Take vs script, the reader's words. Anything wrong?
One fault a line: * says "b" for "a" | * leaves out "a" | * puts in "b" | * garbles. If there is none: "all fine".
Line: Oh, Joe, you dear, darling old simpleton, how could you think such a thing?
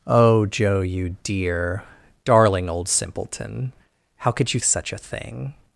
* leaves out "think"